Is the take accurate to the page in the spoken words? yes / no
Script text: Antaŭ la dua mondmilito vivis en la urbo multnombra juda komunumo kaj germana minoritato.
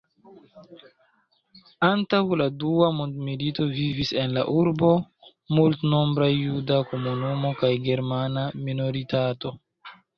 yes